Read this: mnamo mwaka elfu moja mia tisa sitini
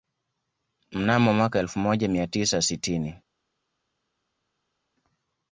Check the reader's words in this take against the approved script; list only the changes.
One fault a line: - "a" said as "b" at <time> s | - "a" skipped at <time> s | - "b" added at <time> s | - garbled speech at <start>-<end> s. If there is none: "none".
none